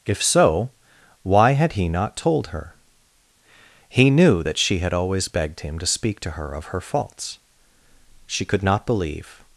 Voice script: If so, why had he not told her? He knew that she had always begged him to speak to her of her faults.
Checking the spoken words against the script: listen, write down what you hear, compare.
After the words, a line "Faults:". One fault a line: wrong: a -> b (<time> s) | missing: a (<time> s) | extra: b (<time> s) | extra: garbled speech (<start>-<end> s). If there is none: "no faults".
If so, why had he not told her? He knew that she had always begged him to speak to her of her faults. She could not believe
Faults:
extra: She could not believe (8.3 s)